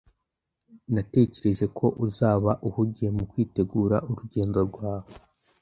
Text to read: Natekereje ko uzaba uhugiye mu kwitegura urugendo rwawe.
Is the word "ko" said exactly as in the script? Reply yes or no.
yes